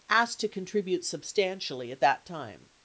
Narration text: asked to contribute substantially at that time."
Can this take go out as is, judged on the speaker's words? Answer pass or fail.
pass